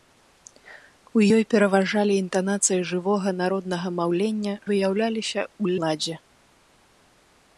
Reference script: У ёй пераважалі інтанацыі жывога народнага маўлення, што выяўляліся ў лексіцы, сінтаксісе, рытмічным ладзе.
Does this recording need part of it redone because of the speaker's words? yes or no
yes